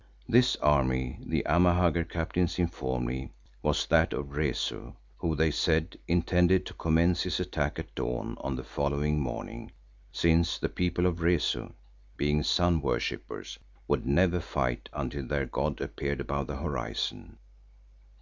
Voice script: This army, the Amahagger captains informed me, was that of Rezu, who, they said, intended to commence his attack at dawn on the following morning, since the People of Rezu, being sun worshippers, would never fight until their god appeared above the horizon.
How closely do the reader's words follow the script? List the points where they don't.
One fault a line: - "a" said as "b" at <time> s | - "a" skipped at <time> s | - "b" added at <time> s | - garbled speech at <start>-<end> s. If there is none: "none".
none